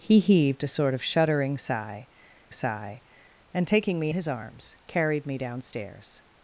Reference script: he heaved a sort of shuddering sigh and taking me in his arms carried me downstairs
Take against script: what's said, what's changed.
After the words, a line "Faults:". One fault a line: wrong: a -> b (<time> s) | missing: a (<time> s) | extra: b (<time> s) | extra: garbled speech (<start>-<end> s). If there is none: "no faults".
he heaved a sort of shuddering sigh sigh and taking me his arms carried me downstairs
Faults:
extra: sigh (2.5 s)
missing: in (4.1 s)